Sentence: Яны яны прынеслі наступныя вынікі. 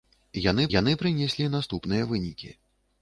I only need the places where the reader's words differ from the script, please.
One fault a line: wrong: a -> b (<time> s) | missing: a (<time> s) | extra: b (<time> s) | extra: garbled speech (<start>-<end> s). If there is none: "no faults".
no faults